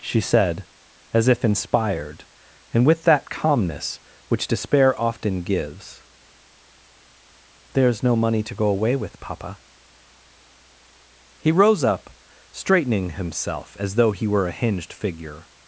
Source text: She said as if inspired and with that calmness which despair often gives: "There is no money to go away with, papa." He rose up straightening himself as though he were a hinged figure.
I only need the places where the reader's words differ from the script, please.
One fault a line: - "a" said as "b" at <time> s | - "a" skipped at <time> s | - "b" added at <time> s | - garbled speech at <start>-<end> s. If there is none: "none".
none